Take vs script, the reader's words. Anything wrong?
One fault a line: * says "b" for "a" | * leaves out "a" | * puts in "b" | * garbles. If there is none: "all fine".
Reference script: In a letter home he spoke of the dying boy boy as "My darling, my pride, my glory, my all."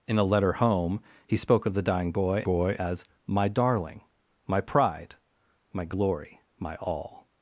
all fine